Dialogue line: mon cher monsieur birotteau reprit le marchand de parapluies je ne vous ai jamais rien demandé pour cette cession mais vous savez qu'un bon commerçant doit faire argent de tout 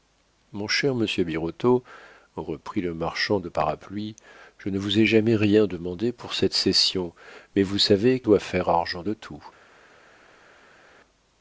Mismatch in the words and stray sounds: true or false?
true